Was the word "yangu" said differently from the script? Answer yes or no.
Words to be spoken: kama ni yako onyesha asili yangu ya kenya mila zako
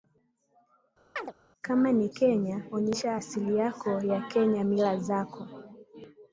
yes